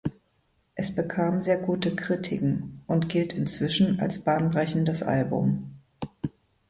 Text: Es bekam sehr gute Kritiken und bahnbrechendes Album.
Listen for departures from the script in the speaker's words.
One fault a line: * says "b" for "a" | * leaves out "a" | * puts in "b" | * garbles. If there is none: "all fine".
* puts in "gilt inzwischen als"